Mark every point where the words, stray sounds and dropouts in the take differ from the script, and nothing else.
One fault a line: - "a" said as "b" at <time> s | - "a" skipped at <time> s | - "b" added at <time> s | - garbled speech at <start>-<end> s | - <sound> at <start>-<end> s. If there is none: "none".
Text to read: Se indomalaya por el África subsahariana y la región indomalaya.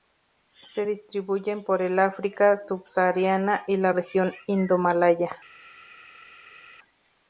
- "indomalaya" said as "distribuyen" at 0.9 s